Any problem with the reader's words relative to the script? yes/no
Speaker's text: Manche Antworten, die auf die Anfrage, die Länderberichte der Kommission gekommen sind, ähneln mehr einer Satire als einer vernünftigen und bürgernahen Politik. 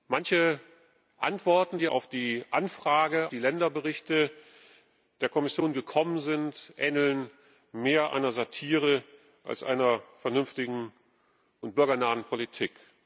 no